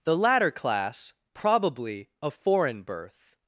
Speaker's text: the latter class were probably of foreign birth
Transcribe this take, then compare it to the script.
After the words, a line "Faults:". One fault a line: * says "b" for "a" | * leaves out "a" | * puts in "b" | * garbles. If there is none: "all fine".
the latter class probably of foreign birth
Faults:
* leaves out "were"